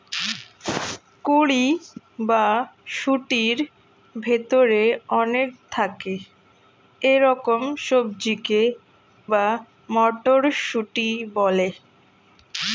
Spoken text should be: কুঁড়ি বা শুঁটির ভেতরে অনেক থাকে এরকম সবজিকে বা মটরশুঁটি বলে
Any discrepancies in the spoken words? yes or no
no